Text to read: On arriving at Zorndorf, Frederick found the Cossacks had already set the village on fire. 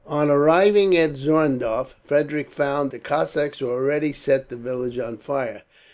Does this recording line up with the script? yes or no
yes